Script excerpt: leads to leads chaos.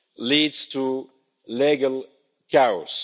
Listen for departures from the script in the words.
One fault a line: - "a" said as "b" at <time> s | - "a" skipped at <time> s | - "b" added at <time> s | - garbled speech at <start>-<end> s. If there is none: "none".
- "leads" said as "legal" at 1.5 s